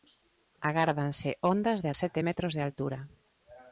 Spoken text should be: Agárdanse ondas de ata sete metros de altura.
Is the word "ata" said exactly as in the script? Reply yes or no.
no